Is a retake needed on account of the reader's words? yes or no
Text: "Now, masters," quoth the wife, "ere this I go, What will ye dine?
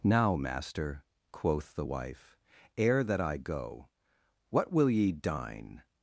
yes